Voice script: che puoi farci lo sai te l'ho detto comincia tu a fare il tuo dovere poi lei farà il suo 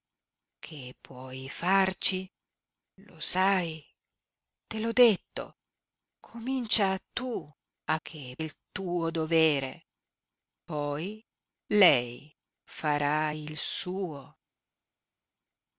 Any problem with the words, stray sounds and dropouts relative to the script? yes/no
yes